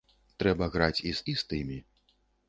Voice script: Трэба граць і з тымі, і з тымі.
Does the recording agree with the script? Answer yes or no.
no